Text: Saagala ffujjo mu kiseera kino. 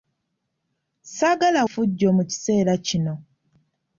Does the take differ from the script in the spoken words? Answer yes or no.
no